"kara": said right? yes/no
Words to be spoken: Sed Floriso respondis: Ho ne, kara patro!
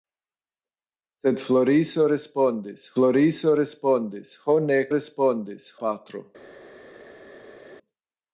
no